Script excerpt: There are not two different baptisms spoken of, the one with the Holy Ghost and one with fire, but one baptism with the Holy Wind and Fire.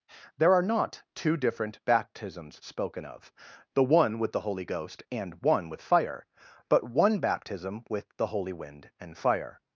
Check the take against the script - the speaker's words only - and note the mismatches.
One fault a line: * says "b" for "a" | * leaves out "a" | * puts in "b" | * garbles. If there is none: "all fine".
all fine